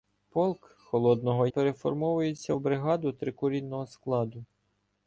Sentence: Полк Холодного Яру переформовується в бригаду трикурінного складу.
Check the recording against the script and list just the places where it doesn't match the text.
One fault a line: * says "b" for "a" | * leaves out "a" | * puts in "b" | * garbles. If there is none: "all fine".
* leaves out "Яру"